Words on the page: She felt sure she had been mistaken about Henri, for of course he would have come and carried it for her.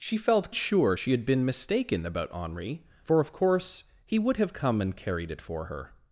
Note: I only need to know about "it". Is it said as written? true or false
true